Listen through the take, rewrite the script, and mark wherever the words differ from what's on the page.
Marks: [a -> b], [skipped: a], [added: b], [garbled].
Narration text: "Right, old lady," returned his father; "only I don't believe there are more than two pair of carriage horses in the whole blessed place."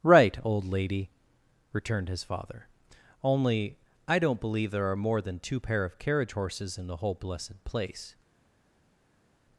"Right, old lady," returned his father; "only I don't believe there are more than two pair of carriage horses in the whole blessed place."